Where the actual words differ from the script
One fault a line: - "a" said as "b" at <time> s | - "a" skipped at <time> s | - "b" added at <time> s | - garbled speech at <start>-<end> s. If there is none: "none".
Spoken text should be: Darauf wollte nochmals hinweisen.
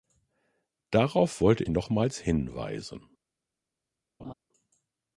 none